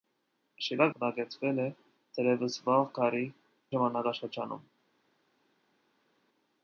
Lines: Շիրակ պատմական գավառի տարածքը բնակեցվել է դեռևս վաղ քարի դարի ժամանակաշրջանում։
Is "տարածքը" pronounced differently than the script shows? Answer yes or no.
yes